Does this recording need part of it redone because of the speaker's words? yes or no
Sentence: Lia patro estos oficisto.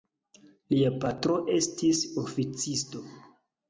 yes